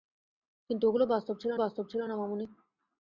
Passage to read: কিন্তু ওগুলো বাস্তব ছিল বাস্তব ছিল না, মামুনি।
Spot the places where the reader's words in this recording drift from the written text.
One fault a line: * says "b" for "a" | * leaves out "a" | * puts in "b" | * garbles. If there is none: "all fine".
all fine